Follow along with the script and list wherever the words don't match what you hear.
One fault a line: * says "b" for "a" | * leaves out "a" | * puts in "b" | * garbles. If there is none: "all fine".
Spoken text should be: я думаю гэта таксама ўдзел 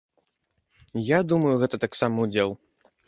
all fine